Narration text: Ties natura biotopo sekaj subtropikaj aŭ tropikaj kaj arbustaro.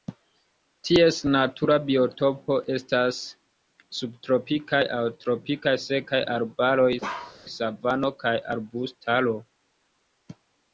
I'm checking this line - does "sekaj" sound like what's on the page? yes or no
no